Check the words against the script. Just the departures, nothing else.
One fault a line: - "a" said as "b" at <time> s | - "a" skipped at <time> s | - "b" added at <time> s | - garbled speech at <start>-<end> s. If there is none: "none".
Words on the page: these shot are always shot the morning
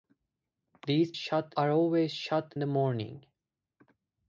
none